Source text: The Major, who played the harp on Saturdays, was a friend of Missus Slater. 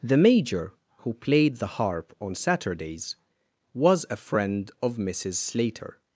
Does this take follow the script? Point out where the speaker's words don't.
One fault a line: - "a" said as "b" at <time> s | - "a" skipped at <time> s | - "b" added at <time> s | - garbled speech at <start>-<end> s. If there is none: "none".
none